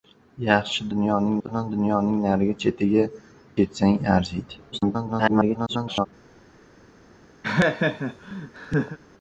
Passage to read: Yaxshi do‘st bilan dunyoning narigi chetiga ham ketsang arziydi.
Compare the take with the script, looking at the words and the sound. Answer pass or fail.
fail